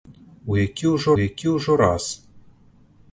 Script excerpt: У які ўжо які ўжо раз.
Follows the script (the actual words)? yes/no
yes